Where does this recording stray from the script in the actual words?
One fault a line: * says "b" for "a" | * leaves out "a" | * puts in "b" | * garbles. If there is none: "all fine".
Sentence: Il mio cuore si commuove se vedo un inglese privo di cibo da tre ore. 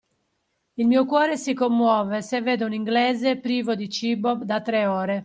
all fine